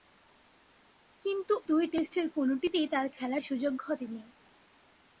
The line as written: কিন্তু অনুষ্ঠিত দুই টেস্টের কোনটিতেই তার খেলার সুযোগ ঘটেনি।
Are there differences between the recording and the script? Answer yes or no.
yes